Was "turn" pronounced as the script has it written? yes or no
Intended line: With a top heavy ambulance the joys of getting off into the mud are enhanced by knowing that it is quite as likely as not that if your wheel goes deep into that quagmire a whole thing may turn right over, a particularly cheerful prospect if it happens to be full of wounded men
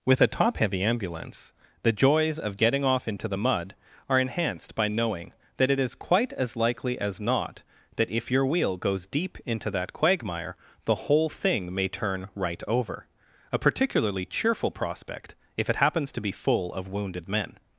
yes